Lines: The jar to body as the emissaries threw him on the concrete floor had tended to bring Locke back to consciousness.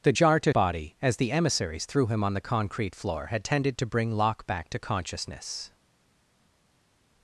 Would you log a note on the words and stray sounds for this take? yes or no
no